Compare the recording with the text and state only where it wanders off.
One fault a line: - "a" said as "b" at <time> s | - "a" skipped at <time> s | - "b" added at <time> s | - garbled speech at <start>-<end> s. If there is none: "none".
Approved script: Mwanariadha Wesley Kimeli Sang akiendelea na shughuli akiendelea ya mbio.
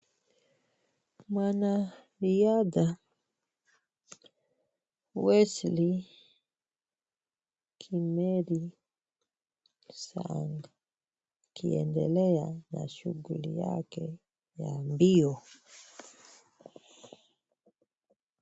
- "akiendelea" said as "yake" at 13.6 s